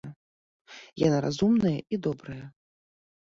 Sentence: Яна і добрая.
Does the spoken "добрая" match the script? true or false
true